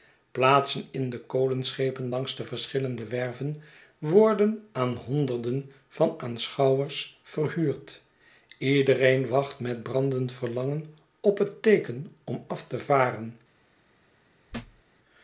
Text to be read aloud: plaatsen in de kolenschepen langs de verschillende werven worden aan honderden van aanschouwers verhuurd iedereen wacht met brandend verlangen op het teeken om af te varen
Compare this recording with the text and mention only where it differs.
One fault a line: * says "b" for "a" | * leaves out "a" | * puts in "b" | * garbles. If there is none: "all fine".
all fine